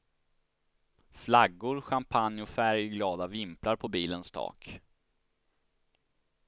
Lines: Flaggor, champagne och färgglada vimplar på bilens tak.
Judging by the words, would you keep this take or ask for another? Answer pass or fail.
pass